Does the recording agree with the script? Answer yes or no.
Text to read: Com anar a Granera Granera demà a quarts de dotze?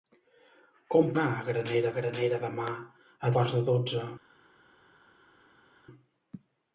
yes